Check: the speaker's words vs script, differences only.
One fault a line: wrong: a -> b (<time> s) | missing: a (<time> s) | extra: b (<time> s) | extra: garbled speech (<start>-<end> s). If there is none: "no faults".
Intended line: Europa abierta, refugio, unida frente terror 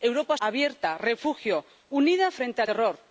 no faults